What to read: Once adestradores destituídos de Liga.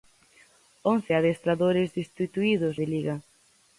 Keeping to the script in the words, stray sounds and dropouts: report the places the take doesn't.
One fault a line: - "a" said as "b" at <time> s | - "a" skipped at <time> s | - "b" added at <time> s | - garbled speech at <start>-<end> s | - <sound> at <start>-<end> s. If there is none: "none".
none